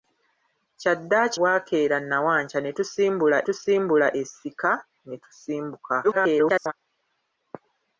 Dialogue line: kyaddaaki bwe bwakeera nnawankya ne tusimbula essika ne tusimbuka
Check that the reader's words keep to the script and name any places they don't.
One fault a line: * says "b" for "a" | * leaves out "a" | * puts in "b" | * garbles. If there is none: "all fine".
* leaves out "bwe"
* puts in "tusimbula"
* garbles